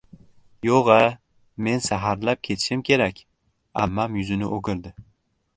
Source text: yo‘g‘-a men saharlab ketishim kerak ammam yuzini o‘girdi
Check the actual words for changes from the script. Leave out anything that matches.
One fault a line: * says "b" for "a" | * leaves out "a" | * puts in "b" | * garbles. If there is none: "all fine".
all fine